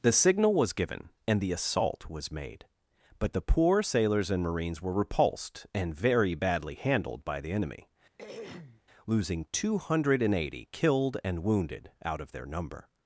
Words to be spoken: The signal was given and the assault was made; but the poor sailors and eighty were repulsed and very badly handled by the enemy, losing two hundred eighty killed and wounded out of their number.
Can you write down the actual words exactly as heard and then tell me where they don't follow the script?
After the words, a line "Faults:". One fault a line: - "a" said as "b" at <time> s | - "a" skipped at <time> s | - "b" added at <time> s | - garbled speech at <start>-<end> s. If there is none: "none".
The signal was given and the assault was made; but the poor sailors and marines were repulsed and very badly handled by the enemy, losing two hundred eighty killed and wounded out of their number.
Faults:
- "eighty" said as "marines" at 4.4 s